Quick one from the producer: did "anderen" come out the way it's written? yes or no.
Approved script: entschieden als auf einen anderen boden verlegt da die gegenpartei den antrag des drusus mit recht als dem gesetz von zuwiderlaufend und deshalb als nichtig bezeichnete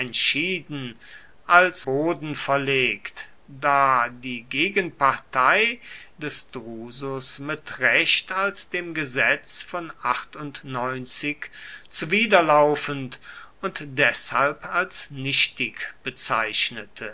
no